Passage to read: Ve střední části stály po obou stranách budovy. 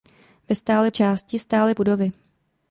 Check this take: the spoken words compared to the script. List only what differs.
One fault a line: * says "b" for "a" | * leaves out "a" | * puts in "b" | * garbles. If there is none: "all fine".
* says "stály" for "střední"
* leaves out "po obou stranách"